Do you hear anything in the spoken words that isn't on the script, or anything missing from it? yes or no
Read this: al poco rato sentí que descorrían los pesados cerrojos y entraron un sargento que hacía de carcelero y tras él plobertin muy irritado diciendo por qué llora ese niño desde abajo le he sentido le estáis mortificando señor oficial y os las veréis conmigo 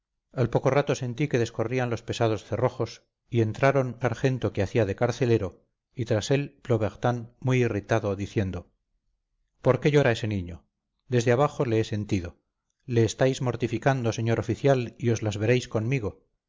yes